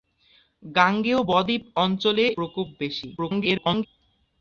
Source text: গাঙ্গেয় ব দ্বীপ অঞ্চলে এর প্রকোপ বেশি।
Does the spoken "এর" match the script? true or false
false